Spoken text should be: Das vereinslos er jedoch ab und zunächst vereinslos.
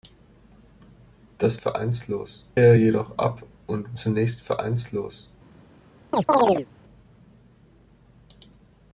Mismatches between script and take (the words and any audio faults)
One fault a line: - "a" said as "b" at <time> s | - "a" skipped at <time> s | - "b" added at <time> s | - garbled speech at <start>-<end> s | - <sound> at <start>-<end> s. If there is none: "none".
- chirp at 6.1-6.7 s